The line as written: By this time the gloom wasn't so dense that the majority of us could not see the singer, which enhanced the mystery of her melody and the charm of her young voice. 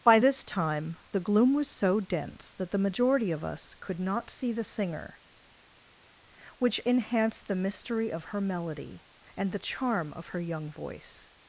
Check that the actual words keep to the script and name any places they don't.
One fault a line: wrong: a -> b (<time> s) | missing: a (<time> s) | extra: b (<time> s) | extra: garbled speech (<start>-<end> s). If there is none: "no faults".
wrong: wasn't -> was (1.5 s)